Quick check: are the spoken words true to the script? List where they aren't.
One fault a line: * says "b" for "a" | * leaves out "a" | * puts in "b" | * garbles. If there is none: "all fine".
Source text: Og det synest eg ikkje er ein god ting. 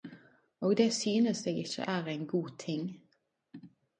all fine